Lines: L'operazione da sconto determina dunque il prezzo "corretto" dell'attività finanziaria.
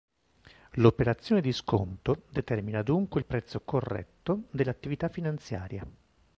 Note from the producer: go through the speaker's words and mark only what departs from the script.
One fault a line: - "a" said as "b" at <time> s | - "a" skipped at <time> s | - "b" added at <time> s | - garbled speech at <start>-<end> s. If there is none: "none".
- "da" said as "di" at 1.4 s